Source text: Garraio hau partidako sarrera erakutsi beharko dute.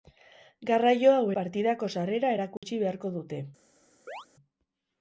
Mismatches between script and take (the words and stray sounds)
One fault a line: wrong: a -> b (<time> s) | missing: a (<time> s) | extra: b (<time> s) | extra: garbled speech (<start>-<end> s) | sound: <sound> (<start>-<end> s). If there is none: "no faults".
sound: dropout (2.6-2.6 s)
sound: chirp (4.1-4.3 s)